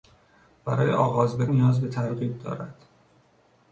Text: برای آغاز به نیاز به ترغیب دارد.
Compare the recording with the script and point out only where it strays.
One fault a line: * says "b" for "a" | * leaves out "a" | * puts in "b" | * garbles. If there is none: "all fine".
all fine